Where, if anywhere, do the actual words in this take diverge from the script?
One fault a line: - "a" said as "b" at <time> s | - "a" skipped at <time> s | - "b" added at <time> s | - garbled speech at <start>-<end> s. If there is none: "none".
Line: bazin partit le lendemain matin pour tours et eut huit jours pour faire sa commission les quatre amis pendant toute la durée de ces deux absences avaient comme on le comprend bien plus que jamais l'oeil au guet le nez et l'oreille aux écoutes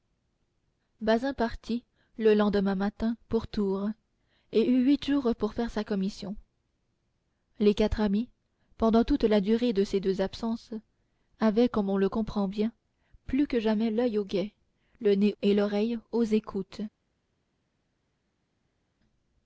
none